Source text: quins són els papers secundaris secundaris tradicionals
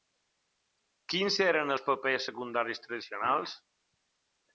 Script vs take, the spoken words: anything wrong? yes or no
yes